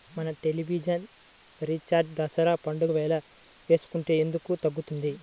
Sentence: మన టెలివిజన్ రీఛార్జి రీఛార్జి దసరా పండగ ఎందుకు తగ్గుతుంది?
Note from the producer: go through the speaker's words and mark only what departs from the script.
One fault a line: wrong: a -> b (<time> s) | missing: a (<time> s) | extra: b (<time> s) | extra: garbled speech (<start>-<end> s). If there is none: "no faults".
missing: రీఛార్జి (2.1 s)
extra: వేళ వేసుకుంటే (2.9 s)